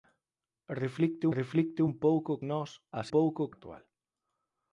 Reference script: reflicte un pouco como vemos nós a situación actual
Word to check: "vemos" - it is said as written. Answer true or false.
false